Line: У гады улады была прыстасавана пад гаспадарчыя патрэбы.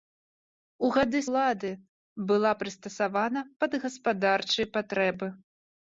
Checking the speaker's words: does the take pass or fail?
pass